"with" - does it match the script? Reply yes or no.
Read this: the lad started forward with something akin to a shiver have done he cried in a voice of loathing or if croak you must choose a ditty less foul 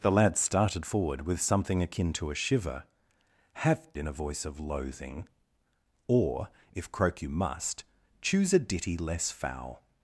yes